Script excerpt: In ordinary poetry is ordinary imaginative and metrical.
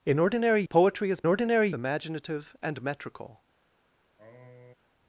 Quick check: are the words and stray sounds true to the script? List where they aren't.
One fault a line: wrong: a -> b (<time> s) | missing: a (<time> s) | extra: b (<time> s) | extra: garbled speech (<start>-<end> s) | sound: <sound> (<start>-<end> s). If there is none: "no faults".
sound: sniff (4.2-4.7 s)